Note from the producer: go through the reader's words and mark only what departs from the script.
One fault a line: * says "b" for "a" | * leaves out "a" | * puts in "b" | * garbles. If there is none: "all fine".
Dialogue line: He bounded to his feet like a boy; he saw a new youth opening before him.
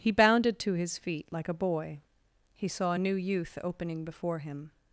all fine